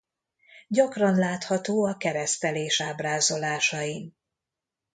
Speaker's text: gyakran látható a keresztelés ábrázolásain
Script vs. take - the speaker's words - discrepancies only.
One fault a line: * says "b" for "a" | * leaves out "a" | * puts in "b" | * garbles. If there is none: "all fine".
all fine